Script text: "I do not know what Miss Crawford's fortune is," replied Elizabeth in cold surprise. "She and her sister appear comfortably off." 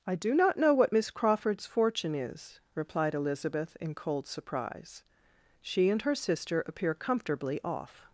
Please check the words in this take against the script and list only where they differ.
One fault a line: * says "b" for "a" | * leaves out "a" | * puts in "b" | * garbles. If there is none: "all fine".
all fine